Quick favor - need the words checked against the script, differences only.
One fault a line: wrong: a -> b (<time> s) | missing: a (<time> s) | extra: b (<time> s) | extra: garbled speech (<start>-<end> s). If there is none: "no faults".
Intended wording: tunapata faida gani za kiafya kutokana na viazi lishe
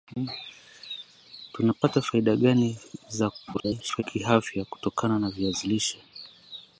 extra: garbled speech (3.5-4.0 s)